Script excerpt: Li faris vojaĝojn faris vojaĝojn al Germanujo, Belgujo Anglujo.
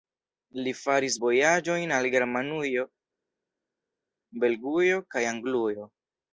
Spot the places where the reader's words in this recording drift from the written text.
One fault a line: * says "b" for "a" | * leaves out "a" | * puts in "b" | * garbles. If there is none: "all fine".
* leaves out "faris vojaĝojn"
* puts in "kaj"